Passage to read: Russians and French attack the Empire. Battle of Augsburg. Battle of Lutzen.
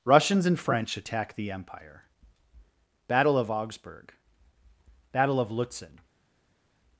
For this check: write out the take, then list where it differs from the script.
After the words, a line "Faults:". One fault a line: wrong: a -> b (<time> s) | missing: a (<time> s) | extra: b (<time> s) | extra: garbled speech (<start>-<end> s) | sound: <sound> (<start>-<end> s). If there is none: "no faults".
Russians and French attack the Empire. Battle of Augsburg. Battle of Lutzen.
Faults:
no faults